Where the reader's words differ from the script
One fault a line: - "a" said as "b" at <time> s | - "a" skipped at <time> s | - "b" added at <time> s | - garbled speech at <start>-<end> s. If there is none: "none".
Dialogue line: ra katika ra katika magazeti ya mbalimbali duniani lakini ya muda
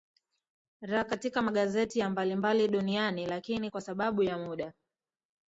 - "ra katika" skipped at 1.4 s
- "kwa sababu" added at 3.7 s